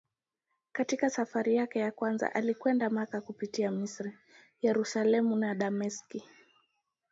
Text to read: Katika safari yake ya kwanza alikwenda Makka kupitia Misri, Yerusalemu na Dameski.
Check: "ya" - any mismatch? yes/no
no